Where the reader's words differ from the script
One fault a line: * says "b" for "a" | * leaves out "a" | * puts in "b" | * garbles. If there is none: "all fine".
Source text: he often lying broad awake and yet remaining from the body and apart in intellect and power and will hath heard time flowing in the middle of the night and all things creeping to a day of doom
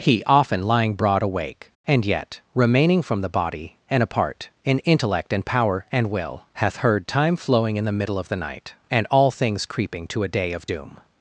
all fine